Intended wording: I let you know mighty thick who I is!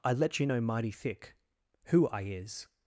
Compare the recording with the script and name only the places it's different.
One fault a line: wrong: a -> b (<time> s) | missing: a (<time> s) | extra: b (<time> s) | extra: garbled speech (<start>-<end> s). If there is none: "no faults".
no faults